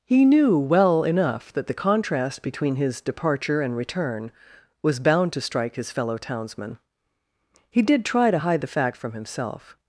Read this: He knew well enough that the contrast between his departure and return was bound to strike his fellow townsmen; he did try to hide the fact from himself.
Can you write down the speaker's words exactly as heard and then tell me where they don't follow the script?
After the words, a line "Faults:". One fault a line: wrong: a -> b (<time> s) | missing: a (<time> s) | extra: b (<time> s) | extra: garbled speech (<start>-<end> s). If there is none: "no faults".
He knew well enough that the contrast between his departure and return was bound to strike his fellow townsmen; he did try to hide the fact from himself.
Faults:
no faults